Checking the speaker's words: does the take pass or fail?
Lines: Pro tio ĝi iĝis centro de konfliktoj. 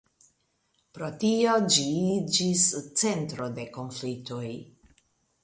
pass